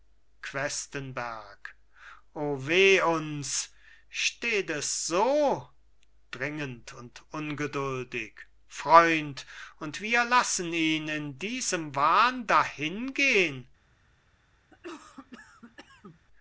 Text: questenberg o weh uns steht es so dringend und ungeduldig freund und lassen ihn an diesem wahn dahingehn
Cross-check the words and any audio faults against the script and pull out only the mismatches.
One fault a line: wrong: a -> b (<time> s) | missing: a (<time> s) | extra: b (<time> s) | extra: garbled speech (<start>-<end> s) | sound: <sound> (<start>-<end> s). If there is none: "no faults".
extra: wir (10.0 s)
wrong: an -> in (11.1 s)
sound: cough (14.7-16.2 s)